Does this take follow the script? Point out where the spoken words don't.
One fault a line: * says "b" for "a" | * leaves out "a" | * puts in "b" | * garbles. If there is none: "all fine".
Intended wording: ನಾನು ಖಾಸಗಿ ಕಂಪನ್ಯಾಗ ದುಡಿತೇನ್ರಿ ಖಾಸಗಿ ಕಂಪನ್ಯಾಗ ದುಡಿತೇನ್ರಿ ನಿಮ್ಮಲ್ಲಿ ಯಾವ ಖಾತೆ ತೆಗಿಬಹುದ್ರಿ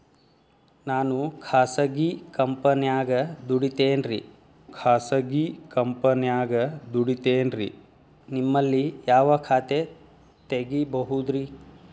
all fine